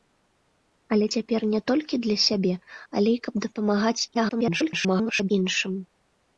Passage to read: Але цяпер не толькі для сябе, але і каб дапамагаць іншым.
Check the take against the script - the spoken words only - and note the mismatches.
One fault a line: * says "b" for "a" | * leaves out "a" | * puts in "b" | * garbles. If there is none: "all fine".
* garbles